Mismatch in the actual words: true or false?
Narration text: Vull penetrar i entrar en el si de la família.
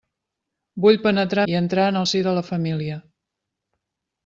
false